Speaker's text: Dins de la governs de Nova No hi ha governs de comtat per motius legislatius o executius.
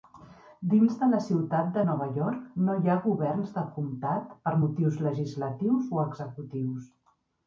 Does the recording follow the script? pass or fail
fail